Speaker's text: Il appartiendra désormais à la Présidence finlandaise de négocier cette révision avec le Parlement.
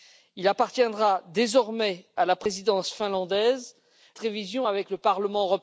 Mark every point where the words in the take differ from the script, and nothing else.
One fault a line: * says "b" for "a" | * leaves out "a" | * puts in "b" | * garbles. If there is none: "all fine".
* leaves out "de négocier cette"